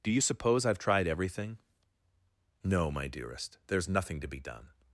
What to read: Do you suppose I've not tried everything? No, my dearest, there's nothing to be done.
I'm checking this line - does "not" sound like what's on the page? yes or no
no